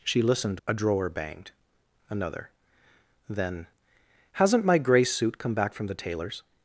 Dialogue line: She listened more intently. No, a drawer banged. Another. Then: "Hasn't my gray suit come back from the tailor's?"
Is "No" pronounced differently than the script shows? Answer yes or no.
yes